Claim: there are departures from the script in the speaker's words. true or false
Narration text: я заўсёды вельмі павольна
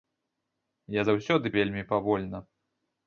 false